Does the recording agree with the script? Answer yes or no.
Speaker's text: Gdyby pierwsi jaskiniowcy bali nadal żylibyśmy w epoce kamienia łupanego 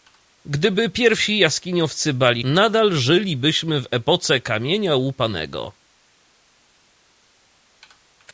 yes